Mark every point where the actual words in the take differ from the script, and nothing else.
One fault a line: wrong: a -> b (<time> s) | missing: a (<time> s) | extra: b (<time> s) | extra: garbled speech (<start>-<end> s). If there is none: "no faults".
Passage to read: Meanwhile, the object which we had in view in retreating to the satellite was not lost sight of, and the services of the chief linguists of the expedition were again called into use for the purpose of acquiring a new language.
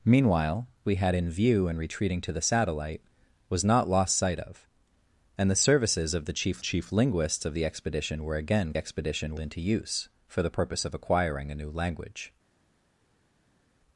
missing: the object which (0.7 s)
extra: chief (6.6 s)
wrong: called -> expedition (8.8 s)